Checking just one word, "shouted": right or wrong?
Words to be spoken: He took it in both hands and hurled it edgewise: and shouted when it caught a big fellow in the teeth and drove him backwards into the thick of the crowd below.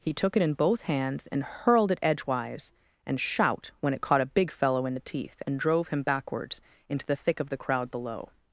wrong